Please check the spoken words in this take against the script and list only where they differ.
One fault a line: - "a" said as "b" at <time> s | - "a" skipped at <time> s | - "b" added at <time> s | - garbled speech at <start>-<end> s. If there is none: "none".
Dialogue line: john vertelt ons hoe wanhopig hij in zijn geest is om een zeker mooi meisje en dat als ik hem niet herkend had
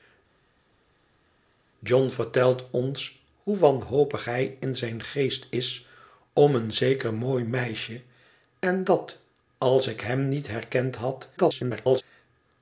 - garbled speech at 11.4-12.0 s